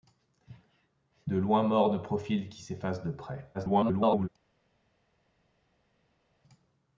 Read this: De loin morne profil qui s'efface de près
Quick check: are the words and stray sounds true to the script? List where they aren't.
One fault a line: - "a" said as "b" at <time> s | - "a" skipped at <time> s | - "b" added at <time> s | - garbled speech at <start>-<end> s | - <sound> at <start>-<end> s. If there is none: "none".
- garbled speech at 3.5-4.3 s